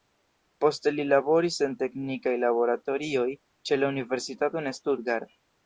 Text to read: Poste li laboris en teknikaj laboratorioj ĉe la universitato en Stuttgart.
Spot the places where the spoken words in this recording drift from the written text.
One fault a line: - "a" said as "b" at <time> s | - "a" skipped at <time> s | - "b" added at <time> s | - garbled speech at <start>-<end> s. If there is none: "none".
none